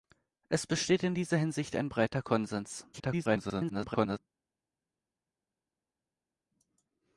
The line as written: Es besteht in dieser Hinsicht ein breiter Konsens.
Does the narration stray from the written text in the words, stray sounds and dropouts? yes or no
yes